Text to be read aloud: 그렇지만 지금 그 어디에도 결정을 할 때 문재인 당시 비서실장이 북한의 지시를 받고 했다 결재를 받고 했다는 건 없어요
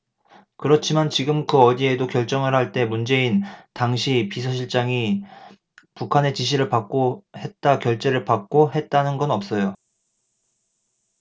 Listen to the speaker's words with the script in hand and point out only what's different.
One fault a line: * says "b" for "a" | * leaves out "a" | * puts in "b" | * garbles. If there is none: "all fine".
all fine